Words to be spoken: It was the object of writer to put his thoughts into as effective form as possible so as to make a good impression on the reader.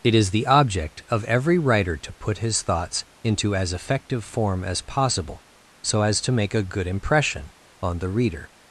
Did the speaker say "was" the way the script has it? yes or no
no